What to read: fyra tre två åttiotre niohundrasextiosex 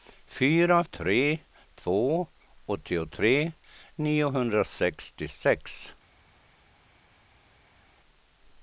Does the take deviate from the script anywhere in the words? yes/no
no